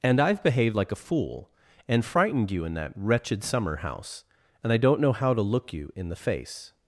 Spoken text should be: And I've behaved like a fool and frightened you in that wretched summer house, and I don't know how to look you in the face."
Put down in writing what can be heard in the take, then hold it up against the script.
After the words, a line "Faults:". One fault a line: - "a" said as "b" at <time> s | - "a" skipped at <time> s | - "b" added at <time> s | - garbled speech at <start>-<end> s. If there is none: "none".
And I've behaved like a fool and frightened you in that wretched summer house, and I don't know how to look you in the face."
Faults:
none